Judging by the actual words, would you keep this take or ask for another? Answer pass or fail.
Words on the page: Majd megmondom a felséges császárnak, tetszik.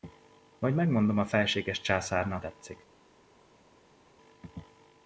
pass